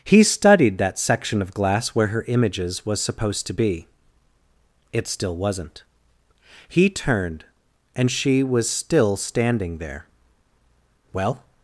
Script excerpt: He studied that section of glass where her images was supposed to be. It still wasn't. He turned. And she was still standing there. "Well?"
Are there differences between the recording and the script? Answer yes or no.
no